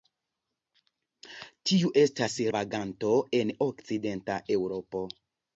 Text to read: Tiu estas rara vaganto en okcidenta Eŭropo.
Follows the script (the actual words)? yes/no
no